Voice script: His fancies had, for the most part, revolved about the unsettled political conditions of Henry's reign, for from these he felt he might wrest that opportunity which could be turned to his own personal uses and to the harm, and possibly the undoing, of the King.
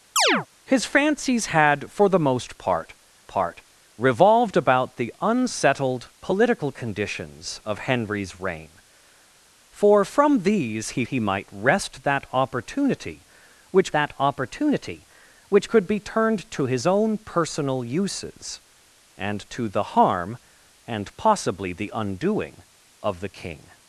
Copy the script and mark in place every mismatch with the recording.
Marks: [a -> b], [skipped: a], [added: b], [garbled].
His fancies had, for the most part, [added: part] revolved about the unsettled political conditions of Henry's reign, for from these he [skipped: felt] he might wrest that opportunity which [added: that opportunity which] could be turned to his own personal uses and to the harm, and possibly the undoing, of the King.